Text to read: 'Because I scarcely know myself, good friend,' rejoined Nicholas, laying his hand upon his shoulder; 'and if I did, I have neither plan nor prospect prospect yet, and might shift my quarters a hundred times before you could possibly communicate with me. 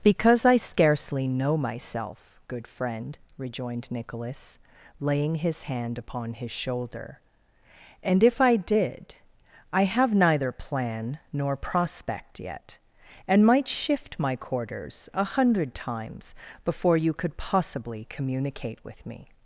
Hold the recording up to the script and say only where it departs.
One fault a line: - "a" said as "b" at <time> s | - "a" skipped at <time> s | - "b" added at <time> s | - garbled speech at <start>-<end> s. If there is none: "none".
- "prospect" skipped at 12.4 s